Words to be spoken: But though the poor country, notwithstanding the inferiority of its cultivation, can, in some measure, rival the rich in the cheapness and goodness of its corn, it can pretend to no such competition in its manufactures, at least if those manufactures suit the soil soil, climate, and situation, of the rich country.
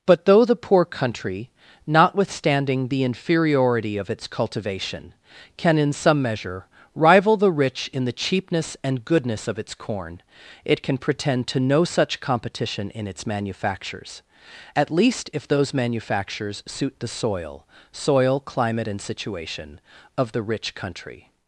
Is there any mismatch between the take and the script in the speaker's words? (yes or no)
no